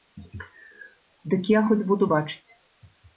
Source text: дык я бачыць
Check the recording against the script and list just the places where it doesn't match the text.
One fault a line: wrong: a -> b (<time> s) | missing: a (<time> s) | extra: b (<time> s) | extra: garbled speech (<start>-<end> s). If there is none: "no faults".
extra: хоць буду (1.7 s)